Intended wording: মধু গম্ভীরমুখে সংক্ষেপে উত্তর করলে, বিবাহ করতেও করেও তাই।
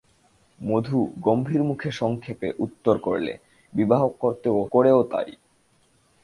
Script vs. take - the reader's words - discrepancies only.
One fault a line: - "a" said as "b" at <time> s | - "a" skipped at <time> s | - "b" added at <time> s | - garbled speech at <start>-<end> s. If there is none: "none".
none